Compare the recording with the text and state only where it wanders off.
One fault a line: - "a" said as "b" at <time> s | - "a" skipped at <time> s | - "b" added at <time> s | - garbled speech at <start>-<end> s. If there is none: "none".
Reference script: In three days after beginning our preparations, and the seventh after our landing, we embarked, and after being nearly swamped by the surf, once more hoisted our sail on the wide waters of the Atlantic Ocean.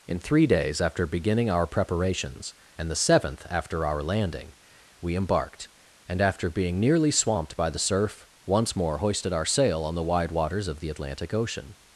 none